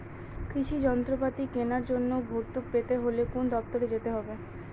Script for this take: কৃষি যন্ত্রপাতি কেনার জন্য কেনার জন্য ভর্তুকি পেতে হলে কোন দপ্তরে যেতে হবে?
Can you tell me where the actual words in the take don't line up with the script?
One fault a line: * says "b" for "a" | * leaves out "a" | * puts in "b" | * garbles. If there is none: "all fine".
* leaves out "কেনার জন্য"